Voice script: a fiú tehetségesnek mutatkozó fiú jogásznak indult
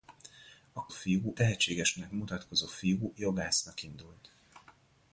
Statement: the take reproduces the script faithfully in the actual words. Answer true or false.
true